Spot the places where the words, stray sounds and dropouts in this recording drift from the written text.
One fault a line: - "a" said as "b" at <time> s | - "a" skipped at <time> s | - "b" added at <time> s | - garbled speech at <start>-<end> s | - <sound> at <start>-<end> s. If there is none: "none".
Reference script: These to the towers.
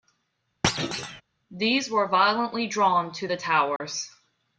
- thud at 0.6-1.2 s
- "were violently drawn" added at 1.9 s
- dropout at 3.8-3.8 s